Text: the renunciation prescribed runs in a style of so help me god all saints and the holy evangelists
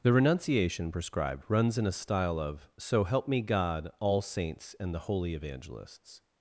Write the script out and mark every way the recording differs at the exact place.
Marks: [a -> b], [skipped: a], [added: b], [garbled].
the renunciation prescribed runs in a style of so help me god all saints and the holy evangelists